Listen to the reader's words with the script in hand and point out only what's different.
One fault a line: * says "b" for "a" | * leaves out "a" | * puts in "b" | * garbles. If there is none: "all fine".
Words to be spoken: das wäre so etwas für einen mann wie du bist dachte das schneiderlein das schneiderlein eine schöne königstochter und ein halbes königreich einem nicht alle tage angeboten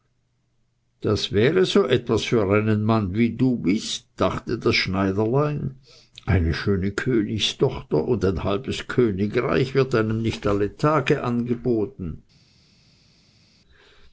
* leaves out "das schneiderlein"
* puts in "wird"